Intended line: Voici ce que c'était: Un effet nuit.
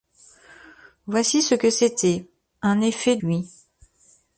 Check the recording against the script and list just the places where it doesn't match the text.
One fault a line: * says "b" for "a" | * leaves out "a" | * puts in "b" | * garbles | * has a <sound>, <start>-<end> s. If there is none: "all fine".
all fine